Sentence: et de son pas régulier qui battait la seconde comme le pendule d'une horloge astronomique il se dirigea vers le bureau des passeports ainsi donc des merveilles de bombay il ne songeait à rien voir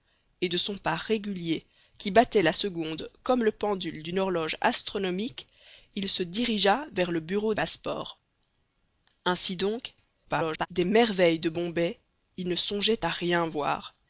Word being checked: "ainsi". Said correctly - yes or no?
yes